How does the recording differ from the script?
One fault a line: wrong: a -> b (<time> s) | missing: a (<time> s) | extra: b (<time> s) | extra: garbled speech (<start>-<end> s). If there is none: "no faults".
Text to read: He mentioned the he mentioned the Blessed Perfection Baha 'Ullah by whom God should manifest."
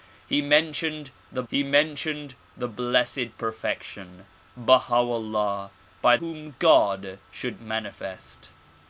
no faults